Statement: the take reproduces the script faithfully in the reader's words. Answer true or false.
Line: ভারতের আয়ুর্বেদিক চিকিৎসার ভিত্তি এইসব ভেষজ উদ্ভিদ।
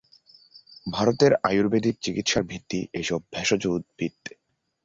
true